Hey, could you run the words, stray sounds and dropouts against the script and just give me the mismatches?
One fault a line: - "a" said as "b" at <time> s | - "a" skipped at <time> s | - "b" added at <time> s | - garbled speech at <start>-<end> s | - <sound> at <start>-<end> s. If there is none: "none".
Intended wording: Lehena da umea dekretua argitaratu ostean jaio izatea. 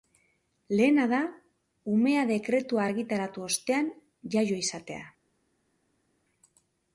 none